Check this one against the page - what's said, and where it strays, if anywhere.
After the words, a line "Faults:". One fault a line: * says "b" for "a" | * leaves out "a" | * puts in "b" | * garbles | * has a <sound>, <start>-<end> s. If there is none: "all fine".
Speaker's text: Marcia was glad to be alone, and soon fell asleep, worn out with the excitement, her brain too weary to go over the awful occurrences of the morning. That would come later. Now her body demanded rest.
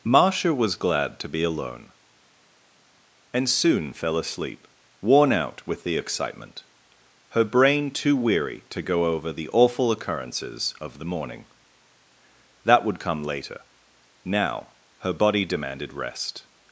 Marcia was glad to be alone, and soon fell asleep, worn out with the excitement, her brain too weary to go over the awful occurrences of the morning. That would come later. Now her body demanded rest.
Faults:
all fine